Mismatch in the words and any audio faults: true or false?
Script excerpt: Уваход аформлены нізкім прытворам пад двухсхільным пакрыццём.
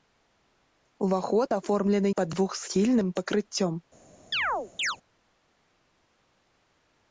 true